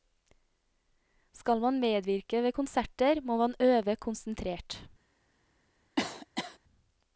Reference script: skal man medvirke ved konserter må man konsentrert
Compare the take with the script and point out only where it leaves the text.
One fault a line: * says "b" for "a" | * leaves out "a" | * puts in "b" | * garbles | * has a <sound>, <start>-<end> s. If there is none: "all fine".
* puts in "øve"
* has a cough, 6.0-6.6 s